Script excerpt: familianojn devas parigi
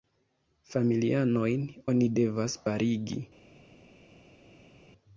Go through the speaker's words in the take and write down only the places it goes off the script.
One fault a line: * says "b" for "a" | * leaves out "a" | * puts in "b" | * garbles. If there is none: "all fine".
* puts in "oni"